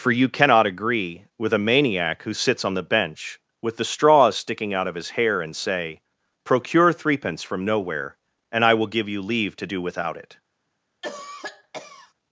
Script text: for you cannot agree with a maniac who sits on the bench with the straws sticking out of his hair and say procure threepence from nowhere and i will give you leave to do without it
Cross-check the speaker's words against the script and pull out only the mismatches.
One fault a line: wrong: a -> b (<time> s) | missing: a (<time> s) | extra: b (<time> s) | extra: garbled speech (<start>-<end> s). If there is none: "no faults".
no faults